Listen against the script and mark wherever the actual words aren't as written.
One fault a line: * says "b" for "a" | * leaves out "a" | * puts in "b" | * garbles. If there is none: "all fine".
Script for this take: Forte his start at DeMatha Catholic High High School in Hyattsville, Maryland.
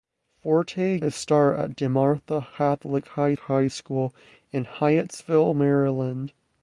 all fine